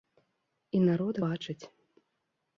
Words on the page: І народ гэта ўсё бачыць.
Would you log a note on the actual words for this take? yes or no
yes